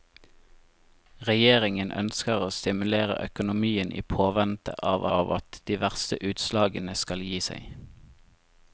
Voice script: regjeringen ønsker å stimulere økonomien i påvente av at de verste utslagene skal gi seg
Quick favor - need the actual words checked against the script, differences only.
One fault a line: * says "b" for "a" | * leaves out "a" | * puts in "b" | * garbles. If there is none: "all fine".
* puts in "av"